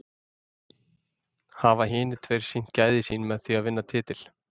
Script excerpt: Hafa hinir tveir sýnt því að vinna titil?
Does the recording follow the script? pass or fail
fail